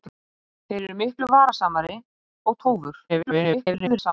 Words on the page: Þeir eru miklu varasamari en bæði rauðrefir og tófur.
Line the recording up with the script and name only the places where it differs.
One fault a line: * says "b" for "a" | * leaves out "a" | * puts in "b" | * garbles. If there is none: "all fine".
* leaves out "en bæði rauðrefir"
* garbles